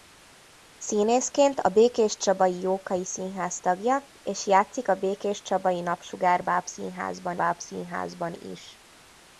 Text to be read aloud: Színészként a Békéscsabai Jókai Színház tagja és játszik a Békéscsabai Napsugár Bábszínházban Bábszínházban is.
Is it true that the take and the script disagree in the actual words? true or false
false